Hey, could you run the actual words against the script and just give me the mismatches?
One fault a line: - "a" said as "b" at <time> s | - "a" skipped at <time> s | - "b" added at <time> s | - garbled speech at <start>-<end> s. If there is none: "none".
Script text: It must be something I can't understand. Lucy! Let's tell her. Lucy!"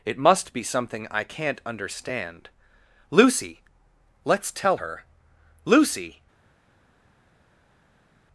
none